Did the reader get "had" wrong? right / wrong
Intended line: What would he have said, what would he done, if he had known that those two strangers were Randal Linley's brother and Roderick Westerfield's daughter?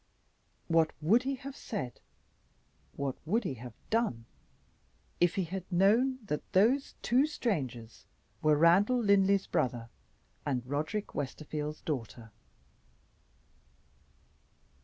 right